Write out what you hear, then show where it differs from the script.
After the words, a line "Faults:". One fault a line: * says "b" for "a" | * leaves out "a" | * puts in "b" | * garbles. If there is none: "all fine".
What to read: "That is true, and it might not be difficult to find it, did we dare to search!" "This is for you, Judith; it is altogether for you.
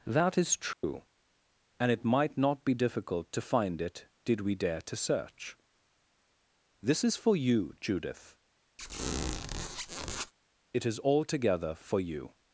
"That is true, and it might not be difficult to find it, did we dare to search!" "This is for you, Judith; it is altogether for you.
Faults:
all fine